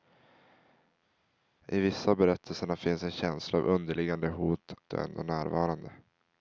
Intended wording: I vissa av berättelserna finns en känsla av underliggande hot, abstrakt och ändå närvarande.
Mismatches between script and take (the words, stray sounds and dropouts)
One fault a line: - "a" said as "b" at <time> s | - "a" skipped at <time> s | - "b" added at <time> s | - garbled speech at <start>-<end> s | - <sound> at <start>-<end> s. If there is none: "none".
- "abstrakt" skipped at 4.7 s